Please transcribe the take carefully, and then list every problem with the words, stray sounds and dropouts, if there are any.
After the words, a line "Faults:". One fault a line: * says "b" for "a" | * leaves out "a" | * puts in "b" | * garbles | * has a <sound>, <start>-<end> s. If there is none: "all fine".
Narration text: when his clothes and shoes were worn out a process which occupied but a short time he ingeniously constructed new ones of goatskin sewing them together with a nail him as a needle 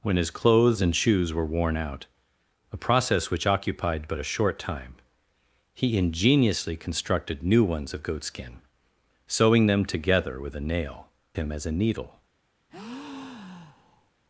when his clothes and shoes were worn out a process which occupied but a short time he ingeniously constructed new ones of goatskin sewing them together with a nail him as a needle
Faults:
* has a breath, 12.7-14.1 s